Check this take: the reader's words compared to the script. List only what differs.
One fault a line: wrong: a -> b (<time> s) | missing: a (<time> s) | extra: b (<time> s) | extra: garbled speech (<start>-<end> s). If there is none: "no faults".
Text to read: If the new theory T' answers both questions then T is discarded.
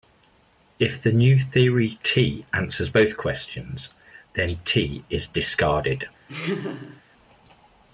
no faults